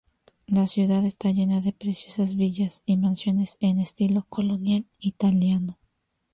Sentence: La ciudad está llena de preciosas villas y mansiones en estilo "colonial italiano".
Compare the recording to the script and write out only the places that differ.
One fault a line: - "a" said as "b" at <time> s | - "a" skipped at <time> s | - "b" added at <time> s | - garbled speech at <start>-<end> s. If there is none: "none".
none